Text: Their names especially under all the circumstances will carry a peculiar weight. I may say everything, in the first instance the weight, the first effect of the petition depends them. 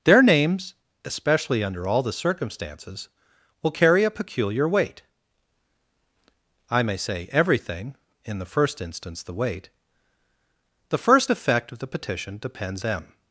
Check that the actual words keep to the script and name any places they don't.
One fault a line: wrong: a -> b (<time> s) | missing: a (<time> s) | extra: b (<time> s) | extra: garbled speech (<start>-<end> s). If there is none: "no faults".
no faults